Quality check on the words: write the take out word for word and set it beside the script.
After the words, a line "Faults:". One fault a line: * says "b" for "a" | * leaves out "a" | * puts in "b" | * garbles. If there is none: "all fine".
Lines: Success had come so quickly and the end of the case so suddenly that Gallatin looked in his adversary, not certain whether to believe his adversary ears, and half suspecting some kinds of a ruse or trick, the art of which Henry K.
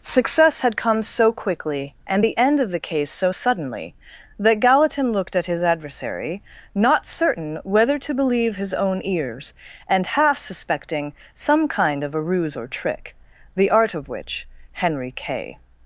Success had come so quickly and the end of the case so suddenly that Gallatin looked at his adversary, not certain whether to believe his own ears, and half suspecting some kind of a ruse or trick, the art of which Henry K.
Faults:
* says "at" for "in"
* says "own" for "adversary"
* says "kind" for "kinds"